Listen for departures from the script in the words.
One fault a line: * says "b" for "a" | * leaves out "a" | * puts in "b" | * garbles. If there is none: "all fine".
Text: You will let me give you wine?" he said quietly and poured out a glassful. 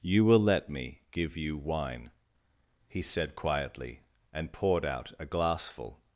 all fine